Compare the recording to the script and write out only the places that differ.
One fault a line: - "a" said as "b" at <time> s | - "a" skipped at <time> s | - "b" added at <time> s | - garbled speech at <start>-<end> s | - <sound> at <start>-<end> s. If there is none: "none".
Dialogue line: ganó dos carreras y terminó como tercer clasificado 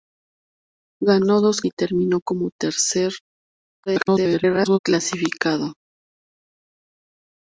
- "carreras" skipped at 1.6 s
- garbled speech at 3.9-4.8 s